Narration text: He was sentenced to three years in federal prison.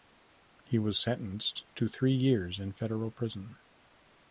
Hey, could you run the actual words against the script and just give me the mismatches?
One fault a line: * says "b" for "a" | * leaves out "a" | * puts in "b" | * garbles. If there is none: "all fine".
all fine